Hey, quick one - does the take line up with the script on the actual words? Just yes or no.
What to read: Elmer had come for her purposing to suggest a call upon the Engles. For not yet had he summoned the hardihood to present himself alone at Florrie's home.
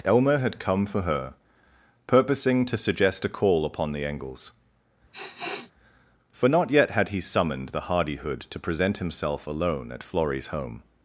yes